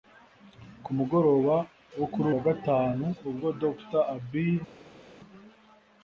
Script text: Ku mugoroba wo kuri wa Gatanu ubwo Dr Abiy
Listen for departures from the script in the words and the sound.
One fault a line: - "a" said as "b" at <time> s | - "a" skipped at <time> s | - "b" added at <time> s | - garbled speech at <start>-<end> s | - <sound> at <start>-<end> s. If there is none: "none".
none